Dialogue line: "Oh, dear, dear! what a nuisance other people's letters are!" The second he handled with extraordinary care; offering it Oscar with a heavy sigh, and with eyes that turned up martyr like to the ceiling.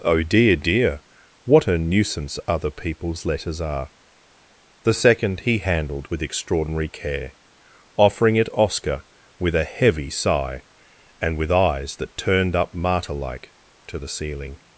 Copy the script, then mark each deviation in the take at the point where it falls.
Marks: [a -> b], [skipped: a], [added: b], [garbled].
"Oh, dear, dear! what a nuisance other people's letters are!" The second he handled with extraordinary care; offering it Oscar with a heavy sigh, and with eyes that turned up martyr like to the ceiling.